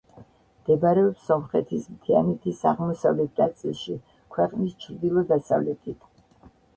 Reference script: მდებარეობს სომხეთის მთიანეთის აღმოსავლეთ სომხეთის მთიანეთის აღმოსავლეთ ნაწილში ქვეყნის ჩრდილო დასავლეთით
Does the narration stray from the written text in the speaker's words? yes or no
yes